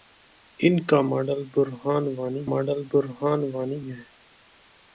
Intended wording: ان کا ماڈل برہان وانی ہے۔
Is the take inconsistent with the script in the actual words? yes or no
yes